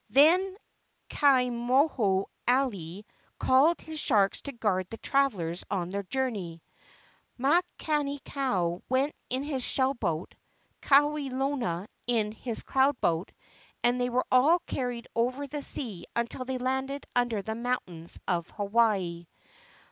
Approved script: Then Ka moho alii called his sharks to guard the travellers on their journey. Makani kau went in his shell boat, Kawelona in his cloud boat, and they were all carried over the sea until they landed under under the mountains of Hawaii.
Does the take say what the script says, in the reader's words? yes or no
no